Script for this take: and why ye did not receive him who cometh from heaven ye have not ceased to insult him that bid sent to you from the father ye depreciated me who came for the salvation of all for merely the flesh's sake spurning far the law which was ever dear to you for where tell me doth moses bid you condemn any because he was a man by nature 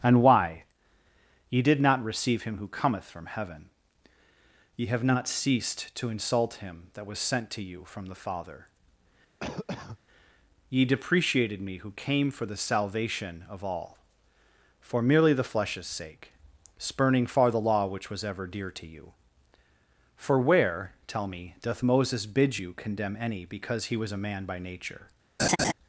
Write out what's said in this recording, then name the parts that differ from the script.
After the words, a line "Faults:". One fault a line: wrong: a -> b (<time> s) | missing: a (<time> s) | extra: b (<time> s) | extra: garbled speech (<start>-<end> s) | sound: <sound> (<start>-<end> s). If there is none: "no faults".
and why ye did not receive him who cometh from heaven ye have not ceased to insult him that was sent to you from the father ye depreciated me who came for the salvation of all for merely the flesh's sake spurning far the law which was ever dear to you for where tell me doth moses bid you condemn any because he was a man by nature
Faults:
wrong: bid -> was (7.0 s)
sound: cough (9.4-10.0 s)
sound: laugh (25.4-25.7 s)